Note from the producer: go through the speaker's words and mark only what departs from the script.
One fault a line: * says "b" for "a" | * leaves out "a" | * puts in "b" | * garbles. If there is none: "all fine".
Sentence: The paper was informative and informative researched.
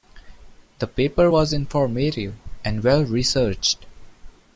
* says "well" for "informative"